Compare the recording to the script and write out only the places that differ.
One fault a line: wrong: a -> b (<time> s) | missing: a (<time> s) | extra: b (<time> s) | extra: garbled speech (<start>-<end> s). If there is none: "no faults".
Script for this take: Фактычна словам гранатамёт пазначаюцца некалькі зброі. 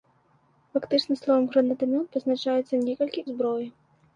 no faults